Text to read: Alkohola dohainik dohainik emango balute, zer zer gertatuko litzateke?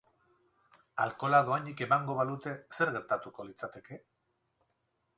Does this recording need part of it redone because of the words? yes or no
yes